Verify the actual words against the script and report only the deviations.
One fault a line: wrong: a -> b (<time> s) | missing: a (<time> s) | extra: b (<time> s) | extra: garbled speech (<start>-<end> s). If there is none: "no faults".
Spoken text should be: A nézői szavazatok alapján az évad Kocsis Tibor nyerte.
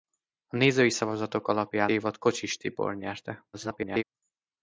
missing: az (1.9 s)
extra: garbled speech (3.5-4.0 s)